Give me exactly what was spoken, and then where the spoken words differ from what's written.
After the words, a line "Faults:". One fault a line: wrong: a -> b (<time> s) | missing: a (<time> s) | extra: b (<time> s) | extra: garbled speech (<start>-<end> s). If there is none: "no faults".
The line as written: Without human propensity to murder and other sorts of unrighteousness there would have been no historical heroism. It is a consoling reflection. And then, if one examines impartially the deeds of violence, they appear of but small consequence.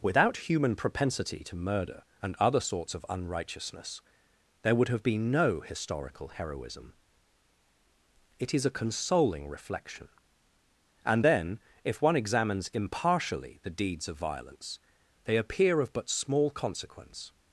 Without human propensity to murder and other sorts of unrighteousness there would have been no historical heroism. It is a consoling reflection. And then, if one examines impartially the deeds of violence, they appear of but small consequence.
Faults:
no faults